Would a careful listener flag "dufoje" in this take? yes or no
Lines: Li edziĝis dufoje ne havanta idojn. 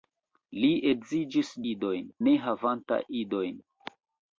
yes